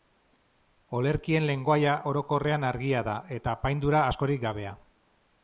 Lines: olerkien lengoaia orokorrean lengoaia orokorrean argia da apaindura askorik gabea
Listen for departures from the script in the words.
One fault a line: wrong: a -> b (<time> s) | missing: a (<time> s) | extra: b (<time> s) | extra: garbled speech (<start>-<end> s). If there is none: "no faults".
missing: lengoaia orokorrean (2.6 s)
extra: eta (3.4 s)